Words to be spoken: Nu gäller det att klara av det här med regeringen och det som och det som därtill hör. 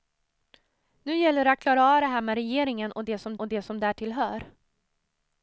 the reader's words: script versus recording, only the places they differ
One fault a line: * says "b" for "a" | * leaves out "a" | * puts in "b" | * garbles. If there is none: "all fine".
all fine